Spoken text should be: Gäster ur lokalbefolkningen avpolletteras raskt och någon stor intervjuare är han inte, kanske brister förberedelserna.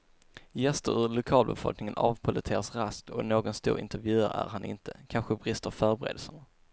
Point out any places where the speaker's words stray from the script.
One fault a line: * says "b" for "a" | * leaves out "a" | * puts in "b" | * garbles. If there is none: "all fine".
all fine